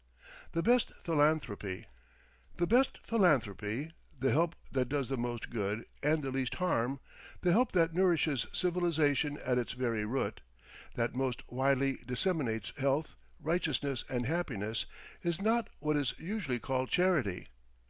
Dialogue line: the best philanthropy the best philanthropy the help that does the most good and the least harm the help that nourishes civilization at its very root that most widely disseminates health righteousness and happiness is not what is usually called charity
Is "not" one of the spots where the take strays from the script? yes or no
no